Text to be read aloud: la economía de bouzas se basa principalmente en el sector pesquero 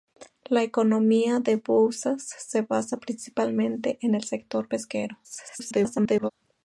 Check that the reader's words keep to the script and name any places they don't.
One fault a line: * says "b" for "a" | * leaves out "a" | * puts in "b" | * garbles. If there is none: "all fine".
* garbles